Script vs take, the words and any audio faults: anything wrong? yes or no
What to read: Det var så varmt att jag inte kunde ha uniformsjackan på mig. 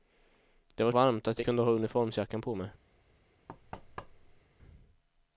yes